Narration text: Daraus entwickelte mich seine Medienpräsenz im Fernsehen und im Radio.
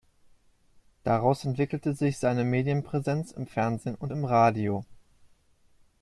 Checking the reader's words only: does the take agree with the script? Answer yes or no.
no